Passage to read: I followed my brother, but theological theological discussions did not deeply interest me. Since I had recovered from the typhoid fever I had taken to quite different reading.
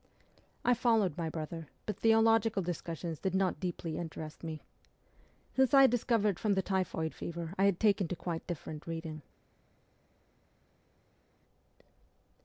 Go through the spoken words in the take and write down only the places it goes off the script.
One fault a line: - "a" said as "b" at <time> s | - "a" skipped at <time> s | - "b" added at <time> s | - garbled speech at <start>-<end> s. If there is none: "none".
- "theological" skipped at 2.6 s